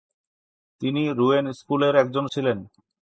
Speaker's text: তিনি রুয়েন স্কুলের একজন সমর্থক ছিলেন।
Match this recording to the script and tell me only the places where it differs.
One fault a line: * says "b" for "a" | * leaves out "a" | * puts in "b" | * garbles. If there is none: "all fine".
* leaves out "সমর্থক"